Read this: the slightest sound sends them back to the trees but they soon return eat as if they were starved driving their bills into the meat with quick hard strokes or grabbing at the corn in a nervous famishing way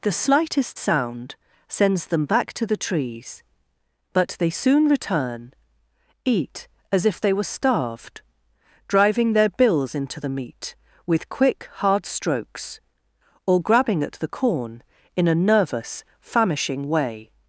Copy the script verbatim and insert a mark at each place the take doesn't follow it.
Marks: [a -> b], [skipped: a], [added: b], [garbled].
the slightest sound sends them back to the trees but they soon return eat as if they were starved driving their bills into the meat with quick hard strokes or grabbing at the corn in a nervous famishing way